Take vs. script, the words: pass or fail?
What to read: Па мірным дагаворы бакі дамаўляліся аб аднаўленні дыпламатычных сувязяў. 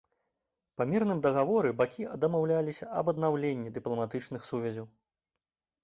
pass